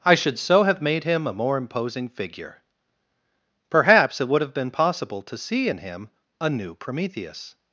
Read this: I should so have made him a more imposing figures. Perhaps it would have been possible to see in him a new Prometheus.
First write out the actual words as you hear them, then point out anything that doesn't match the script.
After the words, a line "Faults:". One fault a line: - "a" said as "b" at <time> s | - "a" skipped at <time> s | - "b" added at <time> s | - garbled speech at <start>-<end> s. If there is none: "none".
I should so have made him a more imposing figure. Perhaps it would have been possible to see in him a new Prometheus.
Faults:
- "figures" said as "figure" at 2.1 s